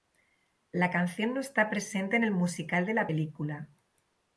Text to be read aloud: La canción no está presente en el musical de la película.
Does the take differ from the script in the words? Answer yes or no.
no